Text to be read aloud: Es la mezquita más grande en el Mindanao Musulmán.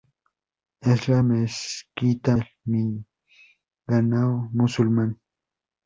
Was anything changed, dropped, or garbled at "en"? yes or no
yes